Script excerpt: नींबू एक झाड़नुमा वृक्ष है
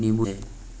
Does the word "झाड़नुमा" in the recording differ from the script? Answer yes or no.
yes